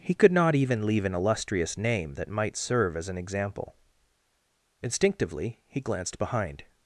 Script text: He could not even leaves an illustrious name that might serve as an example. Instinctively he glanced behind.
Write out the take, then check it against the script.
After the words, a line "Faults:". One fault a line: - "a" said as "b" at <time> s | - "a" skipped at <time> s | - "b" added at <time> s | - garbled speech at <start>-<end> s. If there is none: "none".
He could not even leave an illustrious name that might serve as an example. Instinctively he glanced behind.
Faults:
- "leaves" said as "leave" at 0.9 s